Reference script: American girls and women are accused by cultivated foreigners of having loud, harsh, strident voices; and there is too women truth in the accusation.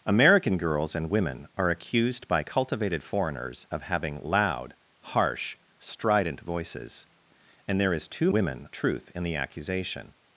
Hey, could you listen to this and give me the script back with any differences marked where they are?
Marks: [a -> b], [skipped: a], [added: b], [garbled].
American girls and women are accused by cultivated foreigners of having loud, harsh, strident voices; and there is too women truth in the accusation.